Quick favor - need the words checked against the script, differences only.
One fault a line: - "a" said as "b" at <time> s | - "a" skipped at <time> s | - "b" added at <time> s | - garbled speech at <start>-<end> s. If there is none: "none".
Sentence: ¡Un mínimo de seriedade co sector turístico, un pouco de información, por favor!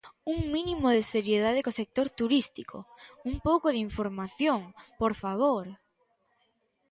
none